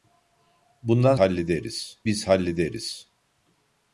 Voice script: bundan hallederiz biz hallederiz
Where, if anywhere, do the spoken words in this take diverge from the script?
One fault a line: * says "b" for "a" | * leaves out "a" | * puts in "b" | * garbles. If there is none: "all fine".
all fine